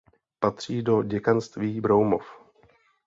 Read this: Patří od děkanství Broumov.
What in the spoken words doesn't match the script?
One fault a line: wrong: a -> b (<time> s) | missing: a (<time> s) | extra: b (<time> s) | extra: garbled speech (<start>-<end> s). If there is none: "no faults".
wrong: od -> do (0.8 s)